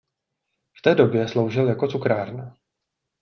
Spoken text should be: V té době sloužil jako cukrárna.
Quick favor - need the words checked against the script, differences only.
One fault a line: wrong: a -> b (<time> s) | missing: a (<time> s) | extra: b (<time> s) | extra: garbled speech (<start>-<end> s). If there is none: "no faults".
no faults